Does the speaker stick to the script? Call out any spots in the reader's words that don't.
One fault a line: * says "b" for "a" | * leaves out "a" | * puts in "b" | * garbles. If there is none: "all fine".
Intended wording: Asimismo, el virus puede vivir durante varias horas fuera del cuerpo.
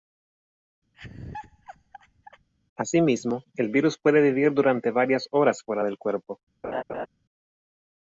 all fine